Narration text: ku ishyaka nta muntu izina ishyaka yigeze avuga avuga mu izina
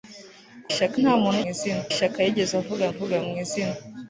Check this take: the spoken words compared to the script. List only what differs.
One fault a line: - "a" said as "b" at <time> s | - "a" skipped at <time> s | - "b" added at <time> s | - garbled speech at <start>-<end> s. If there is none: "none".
none